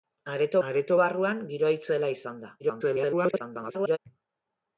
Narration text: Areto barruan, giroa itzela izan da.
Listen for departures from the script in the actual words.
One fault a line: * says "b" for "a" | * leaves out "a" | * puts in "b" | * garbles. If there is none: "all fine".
* puts in "areto"
* garbles